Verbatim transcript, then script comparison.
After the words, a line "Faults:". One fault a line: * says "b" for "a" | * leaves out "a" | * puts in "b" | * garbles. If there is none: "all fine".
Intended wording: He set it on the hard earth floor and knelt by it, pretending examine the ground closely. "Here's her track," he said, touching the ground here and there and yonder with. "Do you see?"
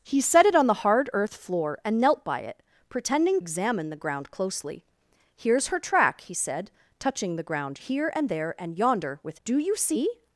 He set it on the hard earth floor and knelt by it, pretending examine the ground closely. "Here's her track," he said, touching the ground here and there and yonder with. "Do you see?"
Faults:
all fine